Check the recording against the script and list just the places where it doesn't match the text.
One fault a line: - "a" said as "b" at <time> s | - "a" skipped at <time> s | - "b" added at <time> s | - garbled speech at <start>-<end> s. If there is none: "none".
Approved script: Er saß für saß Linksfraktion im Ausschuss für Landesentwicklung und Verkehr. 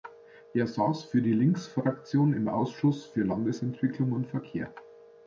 - "saß" said as "die" at 1.2 s